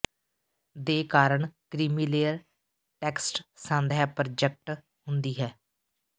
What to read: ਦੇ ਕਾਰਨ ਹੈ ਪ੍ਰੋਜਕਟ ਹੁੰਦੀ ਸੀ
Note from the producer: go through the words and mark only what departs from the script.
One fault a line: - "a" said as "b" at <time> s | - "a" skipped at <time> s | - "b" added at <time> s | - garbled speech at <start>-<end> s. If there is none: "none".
- "ਕ੍ਰੀਮੀਲੇਅਰ ਟੈਕਸਟ ਸੰਦ" added at 1.7 s
- "ਸੀ" said as "ਹੈ" at 5.4 s